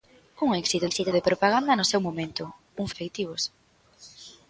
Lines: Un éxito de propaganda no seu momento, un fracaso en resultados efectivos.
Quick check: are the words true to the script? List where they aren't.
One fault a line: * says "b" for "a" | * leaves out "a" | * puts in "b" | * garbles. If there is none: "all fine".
* puts in "éxito"
* leaves out "fracaso en resultados"